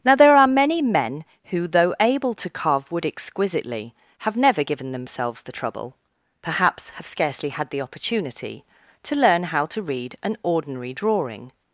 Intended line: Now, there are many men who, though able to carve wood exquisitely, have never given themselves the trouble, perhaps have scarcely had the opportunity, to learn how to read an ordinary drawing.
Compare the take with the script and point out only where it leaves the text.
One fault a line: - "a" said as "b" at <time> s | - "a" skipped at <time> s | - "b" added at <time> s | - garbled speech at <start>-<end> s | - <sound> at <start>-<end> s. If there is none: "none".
none